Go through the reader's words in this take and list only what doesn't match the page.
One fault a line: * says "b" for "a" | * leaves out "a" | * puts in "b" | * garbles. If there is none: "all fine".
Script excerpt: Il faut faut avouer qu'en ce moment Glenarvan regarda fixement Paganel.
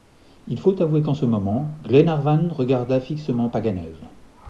* leaves out "faut"